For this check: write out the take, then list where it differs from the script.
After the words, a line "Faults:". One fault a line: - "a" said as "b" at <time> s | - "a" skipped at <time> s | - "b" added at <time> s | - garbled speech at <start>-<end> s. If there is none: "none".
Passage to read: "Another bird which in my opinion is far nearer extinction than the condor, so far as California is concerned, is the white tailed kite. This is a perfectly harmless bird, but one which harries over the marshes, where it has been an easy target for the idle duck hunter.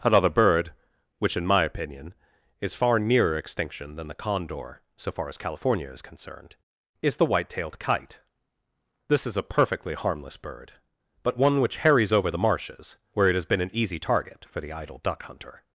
"Another bird which in my opinion is far nearer extinction than the condor, so far as California is concerned, is the white tailed kite. This is a perfectly harmless bird, but one which harries over the marshes, where it has been an easy target for the idle duck hunter.
Faults:
none